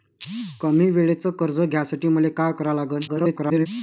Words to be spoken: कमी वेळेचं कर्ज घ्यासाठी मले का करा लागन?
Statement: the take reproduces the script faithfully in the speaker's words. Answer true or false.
false